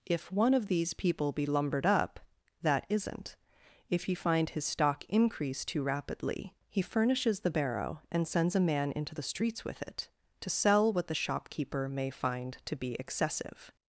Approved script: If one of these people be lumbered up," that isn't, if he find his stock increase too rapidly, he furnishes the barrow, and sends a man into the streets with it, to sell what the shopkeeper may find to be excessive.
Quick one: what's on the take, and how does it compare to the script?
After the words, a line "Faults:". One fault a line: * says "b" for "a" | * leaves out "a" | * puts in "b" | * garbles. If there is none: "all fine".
If one of these people be lumbered up," that isn't, if he find his stock increase too rapidly, he furnishes the barrow, and sends a man into the streets with it, to sell what the shopkeeper may find to be excessive.
Faults:
all fine